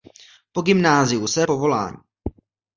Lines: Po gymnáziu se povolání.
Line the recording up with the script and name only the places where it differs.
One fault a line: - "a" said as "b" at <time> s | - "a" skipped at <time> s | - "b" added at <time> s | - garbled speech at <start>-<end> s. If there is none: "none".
none